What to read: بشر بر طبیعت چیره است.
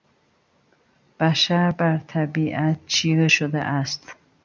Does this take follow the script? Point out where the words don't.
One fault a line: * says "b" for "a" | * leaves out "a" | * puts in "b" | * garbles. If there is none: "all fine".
* puts in "شده"